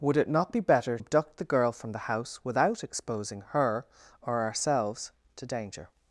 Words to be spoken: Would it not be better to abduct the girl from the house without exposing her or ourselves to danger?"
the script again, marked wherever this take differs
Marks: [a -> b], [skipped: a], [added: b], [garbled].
Would it not be better [skipped: to] abduct the girl from the house without exposing her or ourselves to danger?"